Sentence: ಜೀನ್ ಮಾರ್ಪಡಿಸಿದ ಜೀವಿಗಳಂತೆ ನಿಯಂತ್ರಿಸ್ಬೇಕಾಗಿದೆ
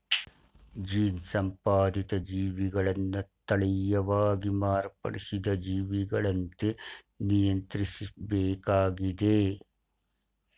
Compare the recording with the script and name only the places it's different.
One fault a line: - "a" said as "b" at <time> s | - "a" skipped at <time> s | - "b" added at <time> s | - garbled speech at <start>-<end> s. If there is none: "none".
- "ಸಂಪಾದಿತ ಜೀವಿಗಳನ್ನ ತಳೀಯವಾಗಿ" added at 1.3 s